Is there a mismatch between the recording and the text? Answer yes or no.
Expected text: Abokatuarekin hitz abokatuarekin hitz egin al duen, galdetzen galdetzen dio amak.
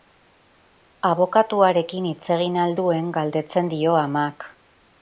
yes